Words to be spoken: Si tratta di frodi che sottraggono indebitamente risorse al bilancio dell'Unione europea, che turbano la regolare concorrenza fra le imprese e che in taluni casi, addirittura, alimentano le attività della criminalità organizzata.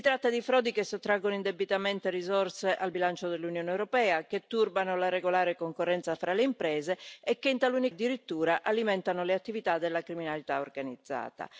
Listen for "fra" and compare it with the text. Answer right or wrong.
right